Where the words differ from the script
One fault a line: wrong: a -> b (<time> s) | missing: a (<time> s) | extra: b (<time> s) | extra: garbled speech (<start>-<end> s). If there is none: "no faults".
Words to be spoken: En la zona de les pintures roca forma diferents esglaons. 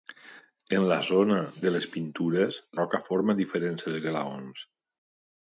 no faults